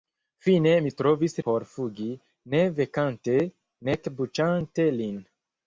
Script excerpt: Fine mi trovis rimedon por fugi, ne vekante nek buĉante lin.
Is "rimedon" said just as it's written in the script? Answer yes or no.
no